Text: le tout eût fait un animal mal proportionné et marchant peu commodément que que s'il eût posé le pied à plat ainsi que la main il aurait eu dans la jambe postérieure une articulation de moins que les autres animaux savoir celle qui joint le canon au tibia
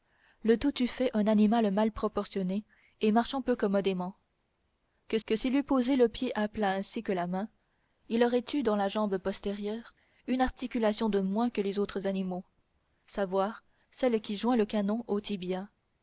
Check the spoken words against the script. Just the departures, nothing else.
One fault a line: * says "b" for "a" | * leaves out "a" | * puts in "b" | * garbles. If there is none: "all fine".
all fine